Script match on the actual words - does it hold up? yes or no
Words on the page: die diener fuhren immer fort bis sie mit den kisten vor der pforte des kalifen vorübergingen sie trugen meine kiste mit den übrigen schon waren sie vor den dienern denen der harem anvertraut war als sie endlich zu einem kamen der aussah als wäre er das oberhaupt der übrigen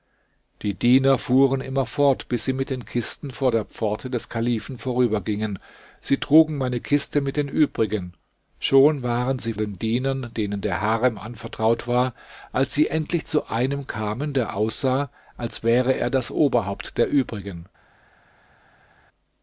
no